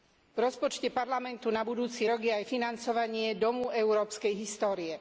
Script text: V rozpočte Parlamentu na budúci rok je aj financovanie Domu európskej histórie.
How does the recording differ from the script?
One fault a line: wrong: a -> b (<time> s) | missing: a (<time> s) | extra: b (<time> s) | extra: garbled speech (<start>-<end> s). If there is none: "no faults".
no faults